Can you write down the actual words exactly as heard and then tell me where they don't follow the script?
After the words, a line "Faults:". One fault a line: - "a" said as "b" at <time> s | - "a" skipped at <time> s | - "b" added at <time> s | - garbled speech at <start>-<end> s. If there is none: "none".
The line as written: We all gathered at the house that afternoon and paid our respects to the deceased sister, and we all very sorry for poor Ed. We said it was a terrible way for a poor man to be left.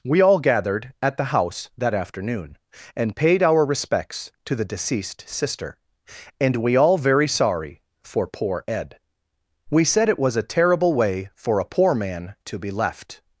We all gathered at the house that afternoon and paid our respects to the deceased sister, and we all very sorry for poor Ed. We said it was a terrible way for a poor man to be left.
Faults:
none